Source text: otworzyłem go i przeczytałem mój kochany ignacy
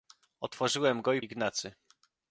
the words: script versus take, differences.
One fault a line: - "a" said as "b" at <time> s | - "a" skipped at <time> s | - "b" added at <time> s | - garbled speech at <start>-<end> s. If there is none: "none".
- "przeczytałem mój kochany" skipped at 1.2 s